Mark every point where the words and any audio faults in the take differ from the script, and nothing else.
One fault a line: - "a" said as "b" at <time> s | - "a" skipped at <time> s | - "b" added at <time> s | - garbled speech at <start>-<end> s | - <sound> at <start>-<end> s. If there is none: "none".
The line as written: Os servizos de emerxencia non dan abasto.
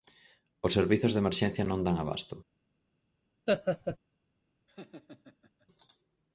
- laugh at 3.5-4.0 s
- laugh at 4.7-5.7 s